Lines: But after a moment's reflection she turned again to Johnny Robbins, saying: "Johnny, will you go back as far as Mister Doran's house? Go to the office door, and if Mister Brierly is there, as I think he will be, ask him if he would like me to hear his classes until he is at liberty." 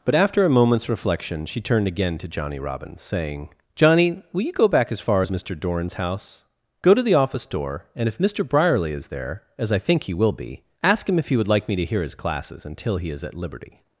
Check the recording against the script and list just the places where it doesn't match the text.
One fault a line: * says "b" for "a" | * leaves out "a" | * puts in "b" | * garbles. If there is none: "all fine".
all fine